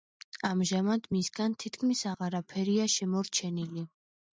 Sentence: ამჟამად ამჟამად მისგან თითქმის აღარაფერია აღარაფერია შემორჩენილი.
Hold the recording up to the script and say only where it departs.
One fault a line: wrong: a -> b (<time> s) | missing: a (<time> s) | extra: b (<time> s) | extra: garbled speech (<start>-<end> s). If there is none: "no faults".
missing: ამჟამად (1.1 s)
missing: აღარაფერია (2.9 s)